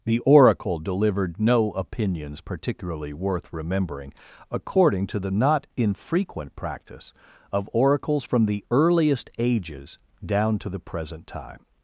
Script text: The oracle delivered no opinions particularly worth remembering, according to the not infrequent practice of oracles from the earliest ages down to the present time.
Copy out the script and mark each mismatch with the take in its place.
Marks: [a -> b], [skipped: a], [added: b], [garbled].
The oracle delivered no opinions particularly worth remembering, according to the not infrequent practice of oracles from the earliest ages down to the present time.